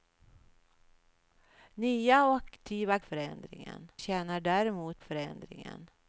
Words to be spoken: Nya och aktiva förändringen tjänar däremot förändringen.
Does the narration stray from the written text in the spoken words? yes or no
no